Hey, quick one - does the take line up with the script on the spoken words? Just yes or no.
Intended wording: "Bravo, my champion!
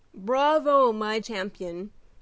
yes